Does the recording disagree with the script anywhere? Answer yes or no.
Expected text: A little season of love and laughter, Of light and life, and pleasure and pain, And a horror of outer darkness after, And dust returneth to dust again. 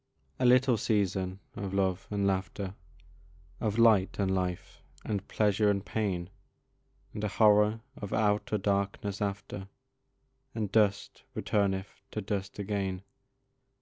no